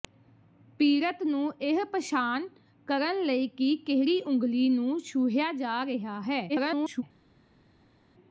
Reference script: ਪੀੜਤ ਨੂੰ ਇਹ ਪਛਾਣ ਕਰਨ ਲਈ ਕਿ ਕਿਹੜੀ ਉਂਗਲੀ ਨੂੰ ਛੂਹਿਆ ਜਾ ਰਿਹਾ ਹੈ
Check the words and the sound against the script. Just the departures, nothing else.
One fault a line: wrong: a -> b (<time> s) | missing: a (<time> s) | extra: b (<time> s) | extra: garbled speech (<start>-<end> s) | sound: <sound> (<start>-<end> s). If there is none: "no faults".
extra: garbled speech (6.5-7.0 s)